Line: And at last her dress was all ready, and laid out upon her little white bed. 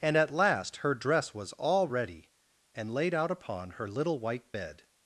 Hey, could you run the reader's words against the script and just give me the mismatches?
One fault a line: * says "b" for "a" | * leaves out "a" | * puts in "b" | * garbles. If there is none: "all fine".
all fine